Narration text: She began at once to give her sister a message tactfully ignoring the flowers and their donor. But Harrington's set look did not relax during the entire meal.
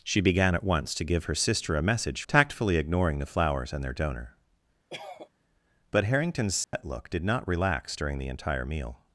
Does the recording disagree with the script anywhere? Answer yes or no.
no